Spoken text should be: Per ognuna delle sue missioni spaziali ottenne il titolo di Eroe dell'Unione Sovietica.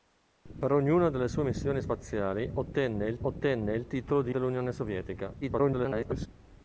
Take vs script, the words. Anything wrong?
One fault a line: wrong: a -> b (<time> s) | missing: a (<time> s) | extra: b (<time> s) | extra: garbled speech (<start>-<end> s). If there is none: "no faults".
extra: ottenne il (3.2 s)
missing: Eroe (4.4 s)
extra: garbled speech (5.4-6.3 s)